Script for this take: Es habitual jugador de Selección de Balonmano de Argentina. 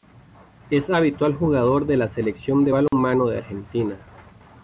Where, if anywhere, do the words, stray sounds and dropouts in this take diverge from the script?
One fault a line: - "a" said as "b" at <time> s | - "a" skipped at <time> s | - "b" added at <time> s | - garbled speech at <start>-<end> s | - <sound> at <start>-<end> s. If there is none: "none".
- "la" added at 1.9 s
- dropout at 2.9-2.9 s